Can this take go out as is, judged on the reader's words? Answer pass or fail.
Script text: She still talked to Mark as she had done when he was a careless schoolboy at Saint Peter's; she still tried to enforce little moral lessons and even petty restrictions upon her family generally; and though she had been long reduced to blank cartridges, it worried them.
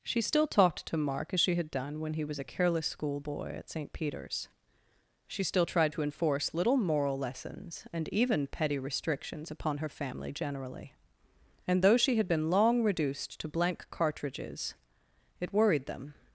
pass